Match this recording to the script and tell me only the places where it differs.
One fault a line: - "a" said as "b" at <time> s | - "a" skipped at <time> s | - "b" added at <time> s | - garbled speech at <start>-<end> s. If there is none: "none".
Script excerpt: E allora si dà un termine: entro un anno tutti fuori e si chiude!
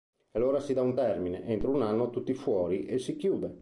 none